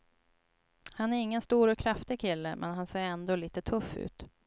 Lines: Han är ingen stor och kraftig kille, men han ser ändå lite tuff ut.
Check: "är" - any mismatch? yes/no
no